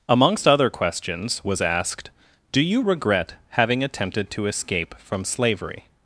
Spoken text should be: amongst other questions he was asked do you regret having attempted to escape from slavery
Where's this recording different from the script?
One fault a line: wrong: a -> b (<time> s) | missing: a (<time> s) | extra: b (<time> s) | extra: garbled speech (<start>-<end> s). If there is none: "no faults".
missing: he (1.4 s)